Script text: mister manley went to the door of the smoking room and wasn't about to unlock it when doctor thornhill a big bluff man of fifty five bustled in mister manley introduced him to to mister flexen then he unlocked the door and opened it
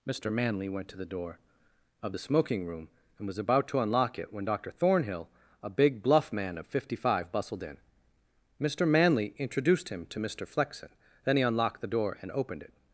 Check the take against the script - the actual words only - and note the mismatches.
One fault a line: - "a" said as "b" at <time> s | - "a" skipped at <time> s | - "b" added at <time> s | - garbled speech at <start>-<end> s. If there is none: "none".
- "wasn't" said as "was" at 3.3 s
- "to" skipped at 10.2 s